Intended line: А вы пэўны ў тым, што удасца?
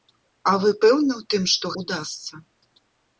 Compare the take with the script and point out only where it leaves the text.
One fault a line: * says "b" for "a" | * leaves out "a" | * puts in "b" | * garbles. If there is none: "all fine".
all fine